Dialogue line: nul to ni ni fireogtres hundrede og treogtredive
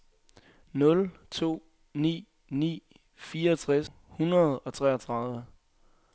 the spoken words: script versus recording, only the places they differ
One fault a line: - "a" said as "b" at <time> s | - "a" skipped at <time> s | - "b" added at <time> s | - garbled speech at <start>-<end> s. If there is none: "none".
none